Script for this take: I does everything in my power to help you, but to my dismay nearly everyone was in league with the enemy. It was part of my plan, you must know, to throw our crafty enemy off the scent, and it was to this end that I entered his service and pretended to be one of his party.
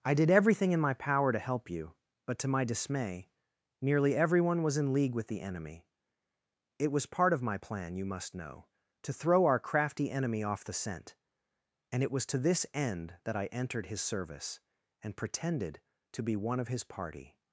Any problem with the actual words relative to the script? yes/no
yes